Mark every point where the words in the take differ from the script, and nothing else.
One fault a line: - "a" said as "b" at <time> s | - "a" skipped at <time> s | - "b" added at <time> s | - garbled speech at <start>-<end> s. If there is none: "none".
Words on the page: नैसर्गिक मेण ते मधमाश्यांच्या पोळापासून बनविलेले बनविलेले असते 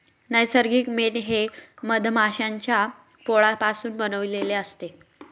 - "ते" said as "हे" at 1.2 s
- "बनविलेले" skipped at 4.5 s